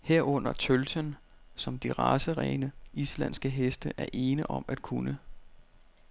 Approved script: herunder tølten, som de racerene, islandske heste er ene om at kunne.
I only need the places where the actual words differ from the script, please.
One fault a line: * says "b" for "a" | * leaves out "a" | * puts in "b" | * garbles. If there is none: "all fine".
all fine